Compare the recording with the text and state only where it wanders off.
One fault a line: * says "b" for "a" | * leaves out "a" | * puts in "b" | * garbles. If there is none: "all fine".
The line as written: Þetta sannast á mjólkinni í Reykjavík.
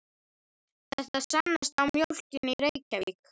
all fine